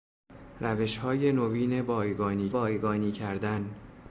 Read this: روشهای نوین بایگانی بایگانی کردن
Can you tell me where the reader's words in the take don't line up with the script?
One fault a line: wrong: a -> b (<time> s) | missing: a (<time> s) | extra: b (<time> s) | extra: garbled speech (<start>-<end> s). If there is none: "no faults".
no faults